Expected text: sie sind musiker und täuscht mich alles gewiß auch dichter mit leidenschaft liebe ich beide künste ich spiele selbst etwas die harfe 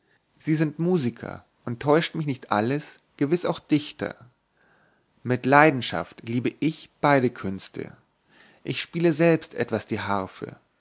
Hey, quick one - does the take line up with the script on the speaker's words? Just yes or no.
no